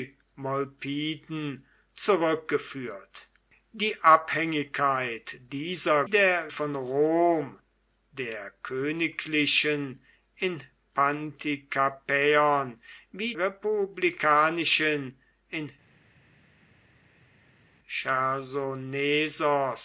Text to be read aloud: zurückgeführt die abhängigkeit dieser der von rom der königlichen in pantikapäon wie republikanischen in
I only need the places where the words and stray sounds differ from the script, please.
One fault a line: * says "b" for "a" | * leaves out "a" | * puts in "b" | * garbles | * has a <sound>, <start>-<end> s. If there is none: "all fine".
all fine